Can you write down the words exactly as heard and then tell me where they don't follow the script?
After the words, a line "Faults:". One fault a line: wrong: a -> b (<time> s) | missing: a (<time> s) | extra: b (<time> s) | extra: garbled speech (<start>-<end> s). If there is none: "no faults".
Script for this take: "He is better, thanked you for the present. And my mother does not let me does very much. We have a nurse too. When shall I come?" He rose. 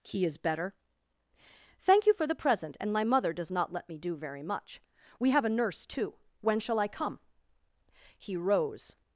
"He is better, thank you for the present. And my mother does not let me do very much. We have a nurse too. When shall I come?" He rose.
Faults:
wrong: thanked -> thank (1.8 s)
wrong: does -> do (4.0 s)